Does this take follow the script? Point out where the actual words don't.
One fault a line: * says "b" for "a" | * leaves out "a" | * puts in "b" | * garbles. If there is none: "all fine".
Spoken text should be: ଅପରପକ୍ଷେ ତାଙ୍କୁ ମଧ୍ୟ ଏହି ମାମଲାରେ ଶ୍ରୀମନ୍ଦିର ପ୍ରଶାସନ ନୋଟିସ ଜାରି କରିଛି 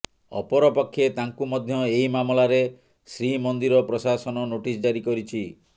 all fine